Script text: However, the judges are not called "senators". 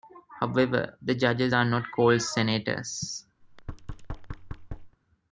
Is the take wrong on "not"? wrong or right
right